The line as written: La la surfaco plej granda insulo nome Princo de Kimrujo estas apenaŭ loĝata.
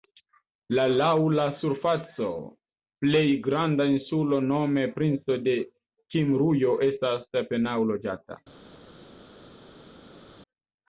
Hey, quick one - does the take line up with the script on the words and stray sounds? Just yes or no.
no